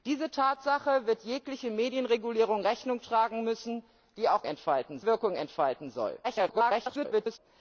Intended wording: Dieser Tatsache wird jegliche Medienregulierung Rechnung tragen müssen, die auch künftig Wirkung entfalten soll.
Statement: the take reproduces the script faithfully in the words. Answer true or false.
false